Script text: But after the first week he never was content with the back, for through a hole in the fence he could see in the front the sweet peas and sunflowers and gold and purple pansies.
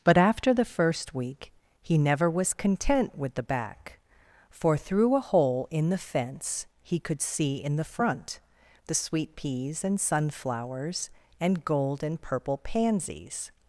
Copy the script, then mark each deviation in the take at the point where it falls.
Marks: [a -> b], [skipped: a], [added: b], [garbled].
But after the first week he never was content with the back, for through a hole in the fence he could see in the front the sweet peas and sunflowers and gold and purple pansies.